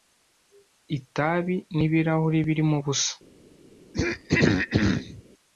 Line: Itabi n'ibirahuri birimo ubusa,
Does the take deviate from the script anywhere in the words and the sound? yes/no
yes